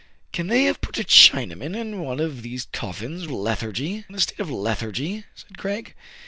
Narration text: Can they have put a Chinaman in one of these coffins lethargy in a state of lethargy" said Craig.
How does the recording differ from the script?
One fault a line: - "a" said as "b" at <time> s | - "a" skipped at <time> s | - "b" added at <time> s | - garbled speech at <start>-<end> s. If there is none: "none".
none